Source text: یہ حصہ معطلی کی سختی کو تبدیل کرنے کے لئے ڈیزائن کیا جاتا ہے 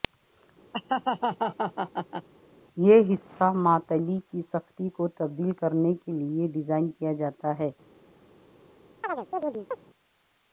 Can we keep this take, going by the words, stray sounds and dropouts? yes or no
no